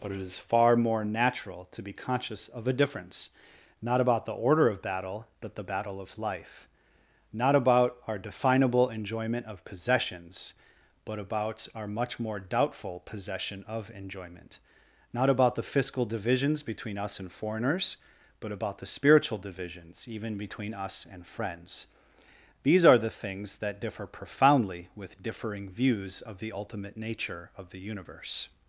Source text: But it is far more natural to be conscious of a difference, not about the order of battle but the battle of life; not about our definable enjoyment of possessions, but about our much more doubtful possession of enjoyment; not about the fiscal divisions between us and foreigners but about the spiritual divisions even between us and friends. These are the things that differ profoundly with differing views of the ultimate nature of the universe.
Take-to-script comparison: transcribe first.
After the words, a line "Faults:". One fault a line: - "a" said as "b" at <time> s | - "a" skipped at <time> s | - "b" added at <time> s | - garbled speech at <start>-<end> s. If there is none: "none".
But it is far more natural to be conscious of a difference, not about the order of battle but the battle of life; not about our definable enjoyment of possessions, but about our much more doubtful possession of enjoyment; not about the fiscal divisions between us and foreigners but about the spiritual divisions even between us and friends. These are the things that differ profoundly with differing views of the ultimate nature of the universe.
Faults:
none